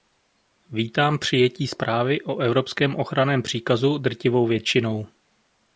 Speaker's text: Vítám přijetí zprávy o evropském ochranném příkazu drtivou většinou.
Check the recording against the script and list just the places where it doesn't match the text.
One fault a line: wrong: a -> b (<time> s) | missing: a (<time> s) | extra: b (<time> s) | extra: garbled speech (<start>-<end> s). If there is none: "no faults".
no faults